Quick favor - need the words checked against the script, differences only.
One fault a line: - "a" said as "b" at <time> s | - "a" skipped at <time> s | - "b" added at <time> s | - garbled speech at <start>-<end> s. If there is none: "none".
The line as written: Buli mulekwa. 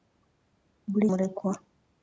none